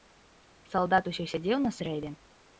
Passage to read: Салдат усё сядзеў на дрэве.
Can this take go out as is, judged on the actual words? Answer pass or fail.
pass